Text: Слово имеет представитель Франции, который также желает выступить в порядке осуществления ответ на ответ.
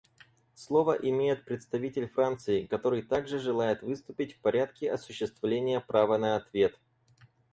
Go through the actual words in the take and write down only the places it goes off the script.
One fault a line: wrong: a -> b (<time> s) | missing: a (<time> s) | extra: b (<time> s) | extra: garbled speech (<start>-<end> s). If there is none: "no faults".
wrong: ответ -> права (5.8 s)